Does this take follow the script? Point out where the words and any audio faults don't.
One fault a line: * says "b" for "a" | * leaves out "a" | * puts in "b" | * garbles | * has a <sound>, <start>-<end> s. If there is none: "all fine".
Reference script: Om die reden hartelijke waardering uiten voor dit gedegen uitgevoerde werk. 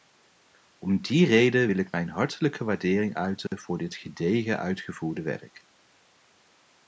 * puts in "wil ik mijn"
* has a dropout, 3.5-3.5 s